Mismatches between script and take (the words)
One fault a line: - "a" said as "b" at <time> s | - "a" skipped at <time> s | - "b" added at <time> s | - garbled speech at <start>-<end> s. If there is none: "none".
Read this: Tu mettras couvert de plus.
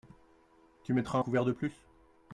none